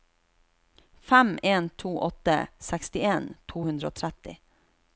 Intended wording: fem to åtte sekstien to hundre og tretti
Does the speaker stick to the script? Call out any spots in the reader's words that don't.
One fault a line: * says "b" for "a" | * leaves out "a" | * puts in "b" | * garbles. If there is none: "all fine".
* puts in "en"